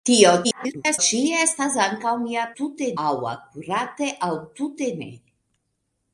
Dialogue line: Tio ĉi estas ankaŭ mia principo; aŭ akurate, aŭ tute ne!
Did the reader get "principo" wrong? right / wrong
wrong